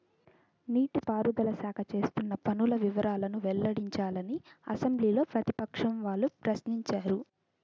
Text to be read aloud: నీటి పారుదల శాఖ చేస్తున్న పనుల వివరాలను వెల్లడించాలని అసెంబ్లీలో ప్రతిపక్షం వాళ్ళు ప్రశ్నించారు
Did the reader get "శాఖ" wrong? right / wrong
right